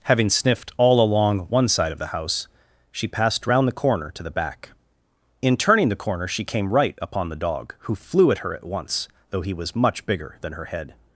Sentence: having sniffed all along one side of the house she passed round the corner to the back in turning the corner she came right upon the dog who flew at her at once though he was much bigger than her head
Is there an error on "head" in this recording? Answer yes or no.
no